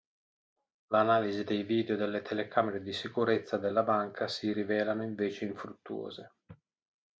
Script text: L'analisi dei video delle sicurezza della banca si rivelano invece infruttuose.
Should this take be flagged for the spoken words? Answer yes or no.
yes